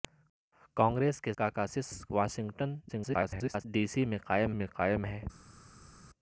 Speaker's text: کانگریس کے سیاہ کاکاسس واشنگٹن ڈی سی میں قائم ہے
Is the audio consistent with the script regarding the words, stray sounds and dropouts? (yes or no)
no